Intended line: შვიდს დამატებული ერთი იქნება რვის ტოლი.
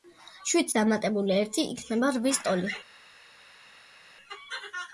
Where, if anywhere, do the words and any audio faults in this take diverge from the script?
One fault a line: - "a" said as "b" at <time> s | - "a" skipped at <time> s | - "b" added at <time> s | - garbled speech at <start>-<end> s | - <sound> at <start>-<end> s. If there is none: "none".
none